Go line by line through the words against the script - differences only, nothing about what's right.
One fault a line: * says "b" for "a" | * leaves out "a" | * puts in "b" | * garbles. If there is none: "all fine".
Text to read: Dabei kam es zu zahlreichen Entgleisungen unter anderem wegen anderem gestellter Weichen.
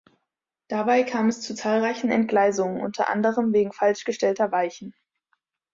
* says "falsch" for "anderem"